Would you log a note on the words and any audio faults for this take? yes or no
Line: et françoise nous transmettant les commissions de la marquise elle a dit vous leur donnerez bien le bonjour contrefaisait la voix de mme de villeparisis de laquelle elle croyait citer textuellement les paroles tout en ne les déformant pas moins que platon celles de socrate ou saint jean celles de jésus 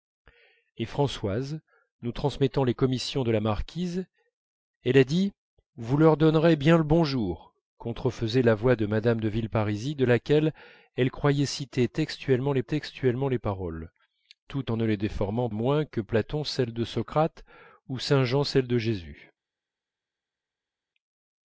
yes